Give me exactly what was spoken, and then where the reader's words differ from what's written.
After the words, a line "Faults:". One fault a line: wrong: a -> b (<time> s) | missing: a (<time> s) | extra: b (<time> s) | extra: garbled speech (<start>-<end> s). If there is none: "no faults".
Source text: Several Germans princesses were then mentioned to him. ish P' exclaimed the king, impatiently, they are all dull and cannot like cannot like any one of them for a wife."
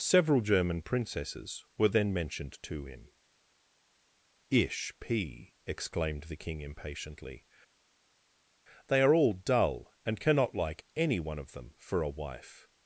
Several German princesses were then mentioned to him. ish P' exclaimed the king, impatiently, they are all dull and cannot like any one of them for a wife."
Faults:
wrong: Germans -> German (0.4 s)
missing: cannot like (10.9 s)